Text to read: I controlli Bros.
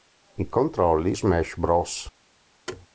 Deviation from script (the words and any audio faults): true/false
true